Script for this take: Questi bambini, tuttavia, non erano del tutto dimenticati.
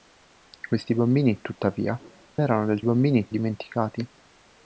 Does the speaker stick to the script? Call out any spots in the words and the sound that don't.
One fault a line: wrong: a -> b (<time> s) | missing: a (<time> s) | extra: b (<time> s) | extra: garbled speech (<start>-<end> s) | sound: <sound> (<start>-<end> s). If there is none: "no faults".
missing: non (1.9 s)
wrong: tutto -> bambini (2.8 s)